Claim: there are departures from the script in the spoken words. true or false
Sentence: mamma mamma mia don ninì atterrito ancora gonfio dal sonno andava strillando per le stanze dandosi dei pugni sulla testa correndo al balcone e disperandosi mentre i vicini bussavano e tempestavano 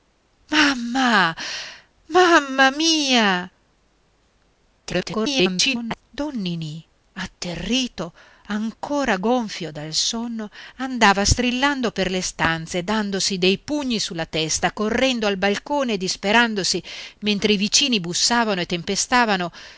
true